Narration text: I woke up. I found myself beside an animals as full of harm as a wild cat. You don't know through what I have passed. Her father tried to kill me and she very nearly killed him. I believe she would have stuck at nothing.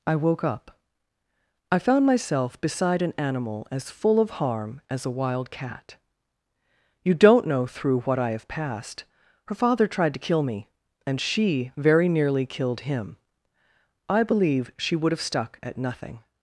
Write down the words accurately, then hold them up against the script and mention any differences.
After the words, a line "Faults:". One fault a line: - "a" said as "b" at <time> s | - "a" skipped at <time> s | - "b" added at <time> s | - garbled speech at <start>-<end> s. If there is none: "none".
I woke up. I found myself beside an animal as full of harm as a wild cat. You don't know through what I have passed. Her father tried to kill me and she very nearly killed him. I believe she would have stuck at nothing.
Faults:
- "animals" said as "animal" at 3.2 s